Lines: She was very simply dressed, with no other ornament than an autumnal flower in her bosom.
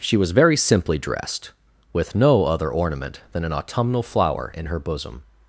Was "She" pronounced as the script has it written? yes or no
yes